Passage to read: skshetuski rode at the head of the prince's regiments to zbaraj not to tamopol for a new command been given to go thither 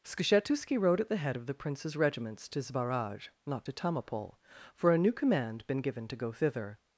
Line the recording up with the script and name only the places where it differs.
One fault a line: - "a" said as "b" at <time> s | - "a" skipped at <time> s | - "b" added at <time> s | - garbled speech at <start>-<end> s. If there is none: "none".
none